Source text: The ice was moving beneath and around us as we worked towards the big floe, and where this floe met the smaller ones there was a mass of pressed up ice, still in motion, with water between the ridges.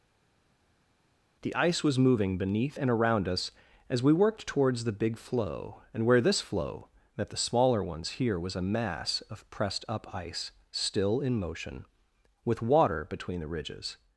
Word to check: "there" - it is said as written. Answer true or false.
false